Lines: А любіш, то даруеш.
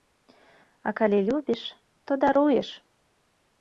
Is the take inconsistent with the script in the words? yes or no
yes